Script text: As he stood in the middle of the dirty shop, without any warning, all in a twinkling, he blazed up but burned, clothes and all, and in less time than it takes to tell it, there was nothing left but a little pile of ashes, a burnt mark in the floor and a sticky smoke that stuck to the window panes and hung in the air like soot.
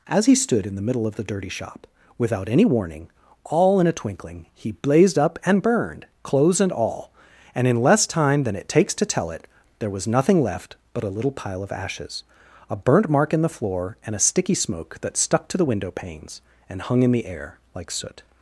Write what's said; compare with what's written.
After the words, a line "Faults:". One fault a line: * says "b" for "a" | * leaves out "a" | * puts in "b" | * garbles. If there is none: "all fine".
As he stood in the middle of the dirty shop, without any warning, all in a twinkling, he blazed up and burned, clothes and all, and in less time than it takes to tell it, there was nothing left but a little pile of ashes, a burnt mark in the floor and a sticky smoke that stuck to the window panes and hung in the air like soot.
Faults:
* says "and" for "but"